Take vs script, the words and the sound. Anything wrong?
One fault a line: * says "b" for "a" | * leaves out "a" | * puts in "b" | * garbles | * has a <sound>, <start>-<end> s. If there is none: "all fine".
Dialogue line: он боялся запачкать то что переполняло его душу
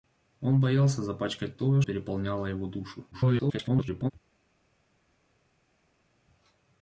* leaves out "что"
* garbles